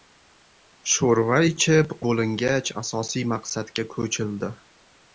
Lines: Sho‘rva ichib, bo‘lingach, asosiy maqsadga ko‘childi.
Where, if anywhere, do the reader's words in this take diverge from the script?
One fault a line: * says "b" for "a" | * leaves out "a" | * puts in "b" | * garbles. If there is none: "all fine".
all fine